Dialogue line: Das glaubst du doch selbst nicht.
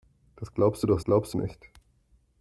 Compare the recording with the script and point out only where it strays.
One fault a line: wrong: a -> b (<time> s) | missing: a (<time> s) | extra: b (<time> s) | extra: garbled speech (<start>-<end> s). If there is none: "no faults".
wrong: selbst -> glaubst (1.0 s)